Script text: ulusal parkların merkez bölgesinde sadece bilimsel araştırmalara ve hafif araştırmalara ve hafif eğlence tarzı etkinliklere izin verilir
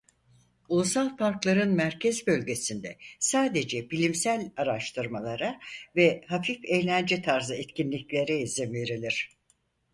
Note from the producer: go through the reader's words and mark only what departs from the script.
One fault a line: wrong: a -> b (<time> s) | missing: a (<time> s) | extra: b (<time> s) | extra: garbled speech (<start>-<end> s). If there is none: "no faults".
missing: araştırmalara ve hafif (6.7 s)